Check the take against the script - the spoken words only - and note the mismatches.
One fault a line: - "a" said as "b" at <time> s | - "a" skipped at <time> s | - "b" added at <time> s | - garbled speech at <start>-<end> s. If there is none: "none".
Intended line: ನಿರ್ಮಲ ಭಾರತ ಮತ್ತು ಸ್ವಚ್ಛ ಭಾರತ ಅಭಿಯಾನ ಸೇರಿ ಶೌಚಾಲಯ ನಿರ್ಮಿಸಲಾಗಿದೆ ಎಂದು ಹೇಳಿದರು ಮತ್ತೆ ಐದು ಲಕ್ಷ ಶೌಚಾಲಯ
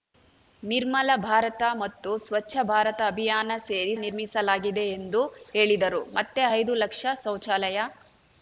- "ಶೌಚಾಲಯ" skipped at 3.9 s